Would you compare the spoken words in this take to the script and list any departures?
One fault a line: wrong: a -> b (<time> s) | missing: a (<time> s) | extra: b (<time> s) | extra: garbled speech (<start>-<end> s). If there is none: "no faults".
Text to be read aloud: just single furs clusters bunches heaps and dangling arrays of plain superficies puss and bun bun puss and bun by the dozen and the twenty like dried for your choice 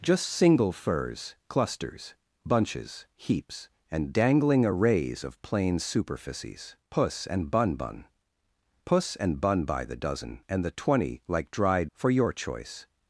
no faults